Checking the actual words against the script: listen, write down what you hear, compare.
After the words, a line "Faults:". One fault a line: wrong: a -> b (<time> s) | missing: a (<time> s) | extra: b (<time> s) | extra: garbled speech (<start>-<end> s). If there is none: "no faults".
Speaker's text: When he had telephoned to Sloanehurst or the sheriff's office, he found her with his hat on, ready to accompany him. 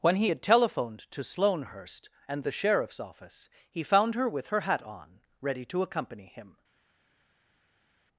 When he had telephoned to Sloanehurst and the sheriff's office, he found her with her hat on, ready to accompany him.
Faults:
wrong: or -> and (2.3 s)
wrong: his -> her (4.5 s)